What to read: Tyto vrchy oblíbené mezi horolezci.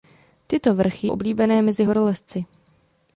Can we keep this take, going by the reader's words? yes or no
yes